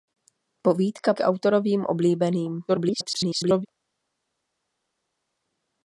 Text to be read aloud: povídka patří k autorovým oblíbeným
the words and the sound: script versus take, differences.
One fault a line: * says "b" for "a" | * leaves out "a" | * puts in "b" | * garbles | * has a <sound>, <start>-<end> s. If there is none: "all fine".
* leaves out "patří"
* garbles